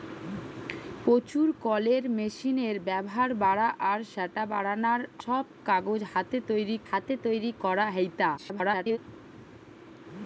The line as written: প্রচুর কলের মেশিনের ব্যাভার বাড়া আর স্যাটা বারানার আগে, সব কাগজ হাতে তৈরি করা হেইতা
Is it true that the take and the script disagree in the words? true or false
true